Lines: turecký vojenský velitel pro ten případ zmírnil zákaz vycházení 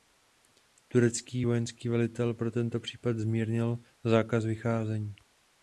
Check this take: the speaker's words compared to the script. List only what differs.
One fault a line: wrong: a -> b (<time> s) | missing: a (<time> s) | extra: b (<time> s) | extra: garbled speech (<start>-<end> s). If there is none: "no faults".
wrong: ten -> tento (2.5 s)